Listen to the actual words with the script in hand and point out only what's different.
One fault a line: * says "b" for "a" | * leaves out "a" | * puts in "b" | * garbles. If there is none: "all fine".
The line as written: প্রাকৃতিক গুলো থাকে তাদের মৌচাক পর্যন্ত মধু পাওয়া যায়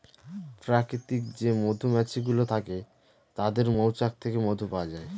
* puts in "যে মধুমাছি"
* says "থেকে" for "পর্যন্ত"